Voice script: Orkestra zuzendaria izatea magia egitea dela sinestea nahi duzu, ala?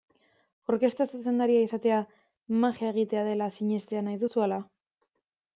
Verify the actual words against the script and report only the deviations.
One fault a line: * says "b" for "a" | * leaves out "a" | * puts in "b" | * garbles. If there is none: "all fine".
all fine